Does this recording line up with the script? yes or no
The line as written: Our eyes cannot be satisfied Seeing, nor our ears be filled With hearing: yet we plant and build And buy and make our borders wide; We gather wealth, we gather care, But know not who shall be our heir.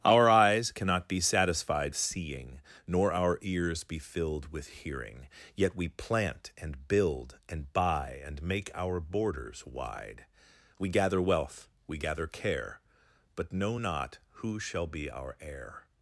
yes